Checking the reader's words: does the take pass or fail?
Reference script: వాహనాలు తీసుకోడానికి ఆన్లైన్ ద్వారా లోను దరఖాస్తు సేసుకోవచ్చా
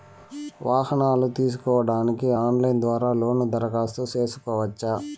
pass